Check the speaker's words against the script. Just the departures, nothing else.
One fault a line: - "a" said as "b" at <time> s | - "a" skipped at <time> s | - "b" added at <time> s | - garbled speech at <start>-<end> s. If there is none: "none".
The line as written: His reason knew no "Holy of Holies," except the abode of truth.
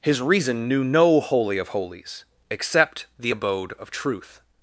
none